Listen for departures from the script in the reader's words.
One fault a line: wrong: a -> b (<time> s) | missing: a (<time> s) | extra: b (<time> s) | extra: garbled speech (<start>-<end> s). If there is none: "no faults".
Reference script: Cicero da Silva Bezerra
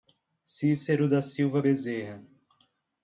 no faults